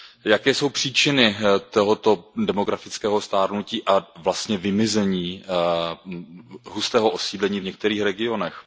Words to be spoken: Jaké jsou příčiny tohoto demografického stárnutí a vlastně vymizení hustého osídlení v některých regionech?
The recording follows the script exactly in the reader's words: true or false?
true